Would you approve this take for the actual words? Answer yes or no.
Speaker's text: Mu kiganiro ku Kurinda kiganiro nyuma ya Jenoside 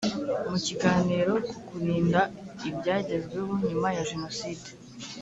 no